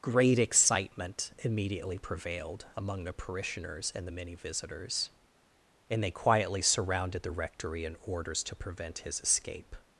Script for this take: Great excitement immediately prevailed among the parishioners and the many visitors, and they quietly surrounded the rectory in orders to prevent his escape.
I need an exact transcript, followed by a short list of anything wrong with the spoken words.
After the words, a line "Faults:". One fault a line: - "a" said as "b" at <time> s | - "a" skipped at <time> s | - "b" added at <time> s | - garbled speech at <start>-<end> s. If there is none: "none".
Great excitement immediately prevailed among the parishioners and the many visitors, and they quietly surrounded the rectory in orders to prevent his escape.
Faults:
none